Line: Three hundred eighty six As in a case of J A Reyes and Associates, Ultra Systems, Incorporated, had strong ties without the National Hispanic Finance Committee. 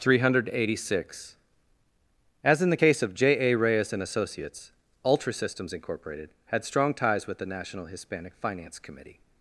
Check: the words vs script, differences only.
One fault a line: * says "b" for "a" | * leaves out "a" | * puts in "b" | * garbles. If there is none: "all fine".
* says "the" for "a"
* says "with" for "without"